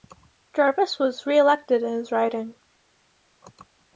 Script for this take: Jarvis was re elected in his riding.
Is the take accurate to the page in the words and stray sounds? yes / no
yes